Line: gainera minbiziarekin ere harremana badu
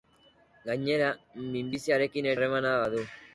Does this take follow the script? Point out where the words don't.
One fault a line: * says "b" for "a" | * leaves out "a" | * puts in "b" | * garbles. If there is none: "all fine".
* leaves out "ere"